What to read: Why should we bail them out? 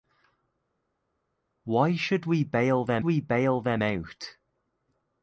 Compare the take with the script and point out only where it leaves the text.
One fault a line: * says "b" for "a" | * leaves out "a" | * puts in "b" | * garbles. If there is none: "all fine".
* puts in "we bail them"